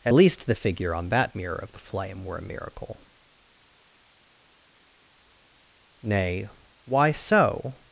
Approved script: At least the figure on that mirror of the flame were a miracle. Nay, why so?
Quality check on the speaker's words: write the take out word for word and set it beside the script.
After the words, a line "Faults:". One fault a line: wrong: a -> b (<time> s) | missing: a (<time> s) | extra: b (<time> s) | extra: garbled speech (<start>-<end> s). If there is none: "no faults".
At least the figure on that mirror of the flame were a miracle. Nay, why so?
Faults:
no faults